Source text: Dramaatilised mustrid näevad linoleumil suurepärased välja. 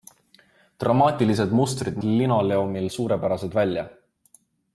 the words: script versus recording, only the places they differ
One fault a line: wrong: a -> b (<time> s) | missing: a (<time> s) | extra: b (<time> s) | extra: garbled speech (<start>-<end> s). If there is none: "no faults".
missing: näevad (2.0 s)